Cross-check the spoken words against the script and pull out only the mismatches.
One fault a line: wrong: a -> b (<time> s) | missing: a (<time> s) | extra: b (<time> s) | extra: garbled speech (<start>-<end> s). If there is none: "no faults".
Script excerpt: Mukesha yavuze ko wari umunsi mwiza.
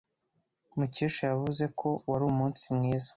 no faults